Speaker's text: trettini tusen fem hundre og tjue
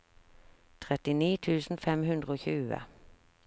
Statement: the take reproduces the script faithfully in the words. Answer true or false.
true